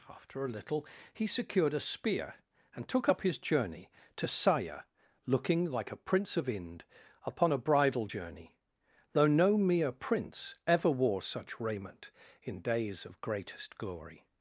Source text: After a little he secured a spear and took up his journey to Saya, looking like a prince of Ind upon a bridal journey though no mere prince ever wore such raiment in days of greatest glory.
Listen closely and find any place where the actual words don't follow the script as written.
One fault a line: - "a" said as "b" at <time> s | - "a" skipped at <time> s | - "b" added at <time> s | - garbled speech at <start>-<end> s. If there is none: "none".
none